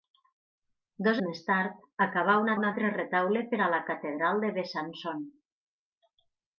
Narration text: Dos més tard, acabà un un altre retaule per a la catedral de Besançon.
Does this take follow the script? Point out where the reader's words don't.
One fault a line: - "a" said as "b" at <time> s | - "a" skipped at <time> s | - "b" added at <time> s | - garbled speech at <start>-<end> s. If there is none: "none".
none